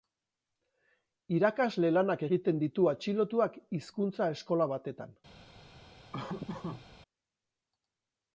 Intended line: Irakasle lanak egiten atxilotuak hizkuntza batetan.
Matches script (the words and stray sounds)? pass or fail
fail